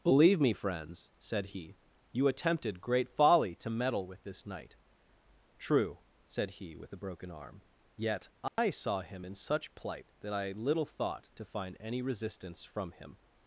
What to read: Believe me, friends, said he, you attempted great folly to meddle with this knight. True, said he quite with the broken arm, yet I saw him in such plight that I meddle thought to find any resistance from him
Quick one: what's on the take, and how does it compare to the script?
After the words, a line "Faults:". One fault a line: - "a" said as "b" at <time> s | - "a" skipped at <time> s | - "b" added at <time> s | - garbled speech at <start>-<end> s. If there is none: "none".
Believe me, friends, said he, you attempted great folly to meddle with this knight. True, said he with the broken arm, yet I saw him in such plight that I little thought to find any resistance from him
Faults:
- "quite" skipped at 6.8 s
- "meddle" said as "little" at 10.5 s